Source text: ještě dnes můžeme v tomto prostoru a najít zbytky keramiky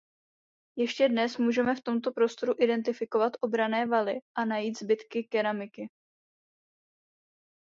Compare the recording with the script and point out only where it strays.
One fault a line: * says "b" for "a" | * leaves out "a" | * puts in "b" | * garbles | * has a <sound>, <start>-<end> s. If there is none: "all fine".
* puts in "identifikovat obranné valy"